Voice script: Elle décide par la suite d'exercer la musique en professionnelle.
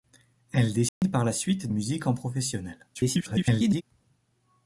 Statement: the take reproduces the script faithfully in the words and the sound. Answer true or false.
false